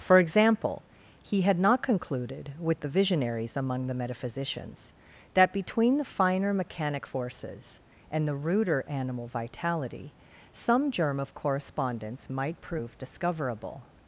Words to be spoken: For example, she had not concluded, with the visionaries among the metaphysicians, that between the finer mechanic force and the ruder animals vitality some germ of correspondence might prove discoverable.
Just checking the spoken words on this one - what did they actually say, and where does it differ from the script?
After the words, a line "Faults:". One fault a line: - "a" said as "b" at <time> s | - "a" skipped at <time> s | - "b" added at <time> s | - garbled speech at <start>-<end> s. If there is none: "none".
For example, he had not concluded, with the visionaries among the metaphysicians, that between the finer mechanic forces and the ruder animal vitality some germ of correspondence might prove discoverable.
Faults:
- "she" said as "he" at 1.2 s
- "force" said as "forces" at 7.0 s
- "animals" said as "animal" at 8.9 s